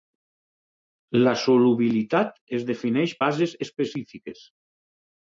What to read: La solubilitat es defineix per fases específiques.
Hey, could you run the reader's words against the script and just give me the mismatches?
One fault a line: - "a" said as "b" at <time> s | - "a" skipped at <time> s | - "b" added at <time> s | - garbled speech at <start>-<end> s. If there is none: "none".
- "per" skipped at 3.1 s